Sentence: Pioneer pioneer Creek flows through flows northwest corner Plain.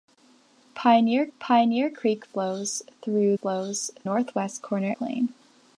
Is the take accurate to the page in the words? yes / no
yes